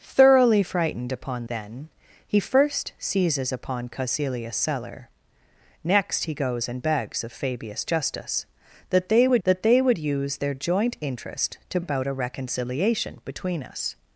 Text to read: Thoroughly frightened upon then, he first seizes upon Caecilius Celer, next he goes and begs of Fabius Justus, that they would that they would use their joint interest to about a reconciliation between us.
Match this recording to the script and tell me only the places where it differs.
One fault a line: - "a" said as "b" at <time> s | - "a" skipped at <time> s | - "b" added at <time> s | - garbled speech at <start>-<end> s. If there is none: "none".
none